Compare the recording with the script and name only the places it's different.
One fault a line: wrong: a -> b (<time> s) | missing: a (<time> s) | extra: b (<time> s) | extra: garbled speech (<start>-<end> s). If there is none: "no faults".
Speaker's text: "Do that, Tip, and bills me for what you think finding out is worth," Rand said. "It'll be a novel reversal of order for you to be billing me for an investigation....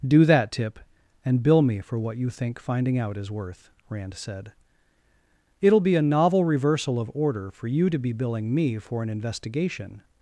wrong: bills -> bill (1.4 s)